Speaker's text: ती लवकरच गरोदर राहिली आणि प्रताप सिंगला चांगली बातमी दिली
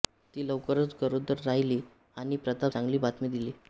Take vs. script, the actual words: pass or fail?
fail